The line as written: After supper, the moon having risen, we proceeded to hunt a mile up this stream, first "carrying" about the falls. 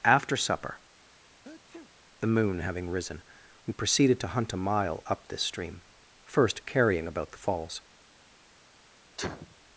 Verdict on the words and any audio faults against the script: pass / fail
fail